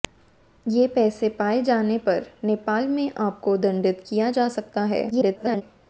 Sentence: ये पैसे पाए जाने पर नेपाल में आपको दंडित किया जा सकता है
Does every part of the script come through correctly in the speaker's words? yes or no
no